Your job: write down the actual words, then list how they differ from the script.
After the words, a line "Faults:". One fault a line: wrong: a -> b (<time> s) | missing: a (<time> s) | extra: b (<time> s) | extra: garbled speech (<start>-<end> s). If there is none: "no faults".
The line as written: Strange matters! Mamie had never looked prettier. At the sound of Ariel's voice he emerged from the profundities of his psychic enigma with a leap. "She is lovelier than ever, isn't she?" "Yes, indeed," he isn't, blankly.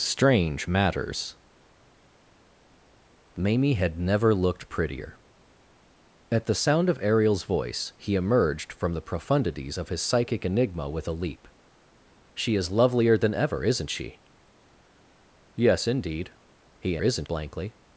Strange matters! Mamie had never looked prettier. At the sound of Ariel's voice he emerged from the profundities of his psychic enigma with a leap. "She is lovelier than ever, isn't she?" "Yes, indeed," he isn't, blankly.
Faults:
no faults